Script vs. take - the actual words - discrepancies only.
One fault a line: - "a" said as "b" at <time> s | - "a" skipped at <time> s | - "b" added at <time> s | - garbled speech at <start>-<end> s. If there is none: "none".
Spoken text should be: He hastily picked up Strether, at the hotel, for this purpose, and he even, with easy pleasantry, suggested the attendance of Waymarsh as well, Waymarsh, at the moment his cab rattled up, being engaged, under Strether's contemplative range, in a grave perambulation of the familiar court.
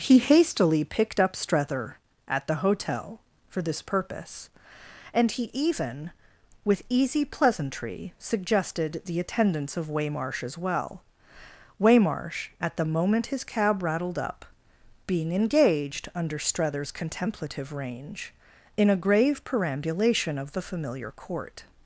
none